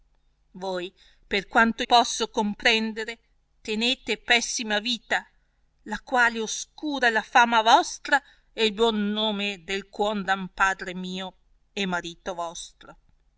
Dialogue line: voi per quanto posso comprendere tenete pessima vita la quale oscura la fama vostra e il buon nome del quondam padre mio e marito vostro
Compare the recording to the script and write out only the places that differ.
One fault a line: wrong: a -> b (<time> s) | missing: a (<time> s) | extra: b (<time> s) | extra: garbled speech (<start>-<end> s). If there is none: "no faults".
no faults